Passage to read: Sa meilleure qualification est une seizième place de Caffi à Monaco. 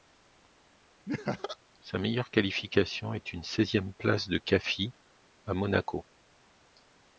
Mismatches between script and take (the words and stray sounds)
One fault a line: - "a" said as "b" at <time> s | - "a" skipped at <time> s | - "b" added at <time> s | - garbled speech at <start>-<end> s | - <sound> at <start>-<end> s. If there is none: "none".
- laugh at 1.1-1.6 s